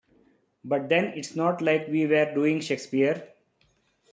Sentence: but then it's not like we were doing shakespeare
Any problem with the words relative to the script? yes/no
no